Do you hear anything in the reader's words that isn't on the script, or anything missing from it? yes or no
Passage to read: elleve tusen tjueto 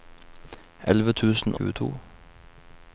no